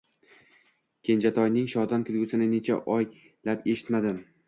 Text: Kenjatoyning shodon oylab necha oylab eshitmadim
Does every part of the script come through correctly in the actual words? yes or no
no